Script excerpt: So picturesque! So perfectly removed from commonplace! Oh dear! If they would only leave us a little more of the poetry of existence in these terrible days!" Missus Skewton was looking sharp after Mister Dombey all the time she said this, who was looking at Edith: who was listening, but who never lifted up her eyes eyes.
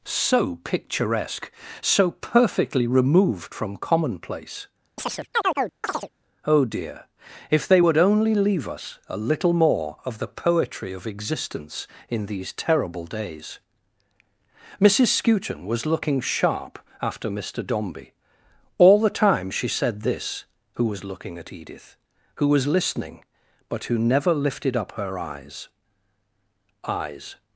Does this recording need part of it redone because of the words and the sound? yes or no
yes